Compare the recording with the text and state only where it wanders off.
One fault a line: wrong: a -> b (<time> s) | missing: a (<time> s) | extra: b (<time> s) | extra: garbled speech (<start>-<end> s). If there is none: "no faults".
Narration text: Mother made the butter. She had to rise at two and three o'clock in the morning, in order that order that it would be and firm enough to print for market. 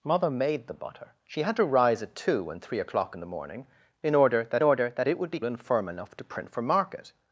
no faults